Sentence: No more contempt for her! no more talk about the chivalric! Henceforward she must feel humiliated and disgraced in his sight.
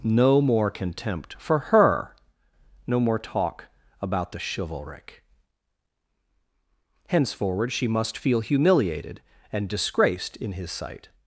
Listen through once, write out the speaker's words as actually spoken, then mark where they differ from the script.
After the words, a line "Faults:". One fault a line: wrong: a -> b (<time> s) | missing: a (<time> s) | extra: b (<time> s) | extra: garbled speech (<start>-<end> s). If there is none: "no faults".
No more contempt for her! no more talk about the chivalric! Henceforward she must feel humiliated and disgraced in his sight.
Faults:
no faults